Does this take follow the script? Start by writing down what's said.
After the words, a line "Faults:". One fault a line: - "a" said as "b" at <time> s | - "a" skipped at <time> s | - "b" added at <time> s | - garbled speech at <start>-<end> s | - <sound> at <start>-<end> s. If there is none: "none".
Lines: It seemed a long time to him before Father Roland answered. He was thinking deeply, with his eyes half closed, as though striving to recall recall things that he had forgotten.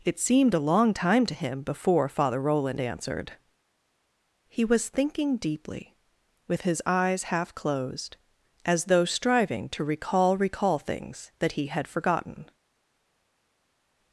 It seemed a long time to him before Father Roland answered. He was thinking deeply, with his eyes half closed, as though striving to recall recall things that he had forgotten.
Faults:
none